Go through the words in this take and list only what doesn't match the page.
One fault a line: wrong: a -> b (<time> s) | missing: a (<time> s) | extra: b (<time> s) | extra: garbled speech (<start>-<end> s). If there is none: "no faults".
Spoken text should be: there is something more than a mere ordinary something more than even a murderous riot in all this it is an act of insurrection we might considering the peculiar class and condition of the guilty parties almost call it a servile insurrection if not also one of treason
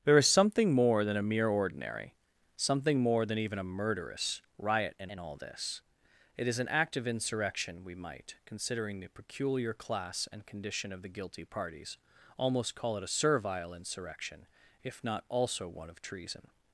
extra: in (5.1 s)